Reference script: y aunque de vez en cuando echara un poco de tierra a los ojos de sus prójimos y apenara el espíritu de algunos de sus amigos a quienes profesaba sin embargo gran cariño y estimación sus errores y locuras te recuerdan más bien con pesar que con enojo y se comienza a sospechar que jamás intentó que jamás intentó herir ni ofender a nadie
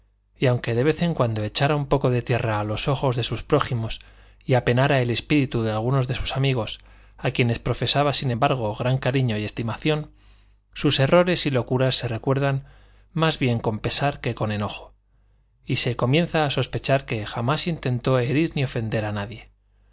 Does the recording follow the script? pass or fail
fail